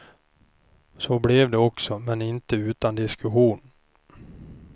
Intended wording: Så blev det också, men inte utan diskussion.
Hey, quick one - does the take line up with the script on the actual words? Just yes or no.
yes